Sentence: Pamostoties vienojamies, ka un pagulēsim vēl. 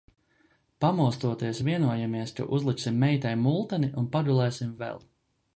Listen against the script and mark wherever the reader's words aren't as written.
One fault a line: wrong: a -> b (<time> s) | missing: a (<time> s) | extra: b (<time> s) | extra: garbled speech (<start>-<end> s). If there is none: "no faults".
extra: uzliksim meitai multeni (2.6 s)